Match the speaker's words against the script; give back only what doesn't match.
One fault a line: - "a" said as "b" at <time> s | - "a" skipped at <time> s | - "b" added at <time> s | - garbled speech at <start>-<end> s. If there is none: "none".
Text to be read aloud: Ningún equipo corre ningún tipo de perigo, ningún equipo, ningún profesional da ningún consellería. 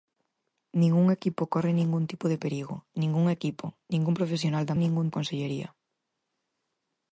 none